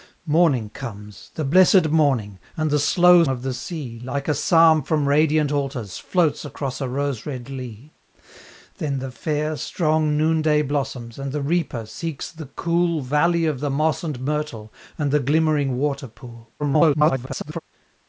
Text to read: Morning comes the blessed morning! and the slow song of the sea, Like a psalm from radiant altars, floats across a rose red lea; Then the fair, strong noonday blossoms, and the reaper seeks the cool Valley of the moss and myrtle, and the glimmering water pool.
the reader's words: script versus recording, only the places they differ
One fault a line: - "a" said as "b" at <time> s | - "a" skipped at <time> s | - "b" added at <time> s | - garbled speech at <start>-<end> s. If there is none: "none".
- "song" skipped at 3.2 s
- garbled speech at 16.6-17.6 s